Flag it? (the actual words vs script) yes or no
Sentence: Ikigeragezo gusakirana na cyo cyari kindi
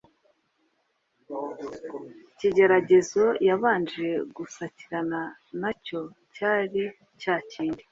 yes